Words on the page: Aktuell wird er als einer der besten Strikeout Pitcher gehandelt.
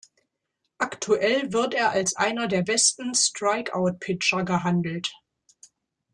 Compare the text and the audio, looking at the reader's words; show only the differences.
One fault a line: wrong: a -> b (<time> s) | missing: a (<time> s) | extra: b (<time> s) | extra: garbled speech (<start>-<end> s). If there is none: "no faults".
no faults